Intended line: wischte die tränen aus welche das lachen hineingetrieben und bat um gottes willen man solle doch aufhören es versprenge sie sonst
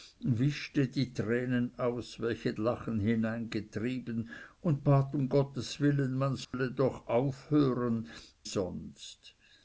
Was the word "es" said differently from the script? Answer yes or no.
yes